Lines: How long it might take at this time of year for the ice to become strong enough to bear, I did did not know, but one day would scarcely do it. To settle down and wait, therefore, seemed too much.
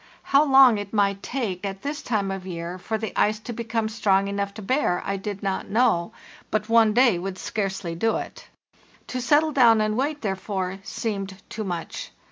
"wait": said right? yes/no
yes